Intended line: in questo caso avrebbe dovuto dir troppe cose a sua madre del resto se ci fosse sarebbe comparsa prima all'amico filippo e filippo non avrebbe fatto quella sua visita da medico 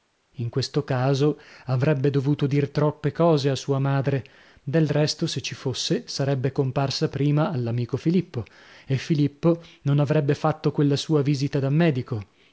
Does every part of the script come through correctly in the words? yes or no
yes